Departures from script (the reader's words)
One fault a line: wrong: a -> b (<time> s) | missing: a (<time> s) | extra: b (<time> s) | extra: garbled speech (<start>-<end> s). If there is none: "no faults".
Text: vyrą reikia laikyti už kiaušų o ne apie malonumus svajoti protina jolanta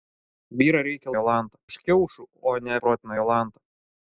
wrong: laikyti -> jolanta (1.2 s)
missing: apie malonumus svajoti (2.8 s)